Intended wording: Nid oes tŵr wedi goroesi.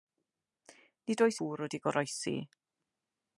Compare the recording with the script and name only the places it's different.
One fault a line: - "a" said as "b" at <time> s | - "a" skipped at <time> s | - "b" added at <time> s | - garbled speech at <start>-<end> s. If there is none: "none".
none